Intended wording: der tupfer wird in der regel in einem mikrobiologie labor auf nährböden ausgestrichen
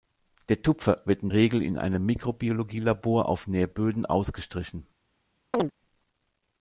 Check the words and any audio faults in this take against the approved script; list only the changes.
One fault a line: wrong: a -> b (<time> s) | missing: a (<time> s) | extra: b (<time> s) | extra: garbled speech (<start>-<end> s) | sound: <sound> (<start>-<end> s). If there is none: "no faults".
missing: der (1.3 s)
sound: chirp (5.5-5.7 s)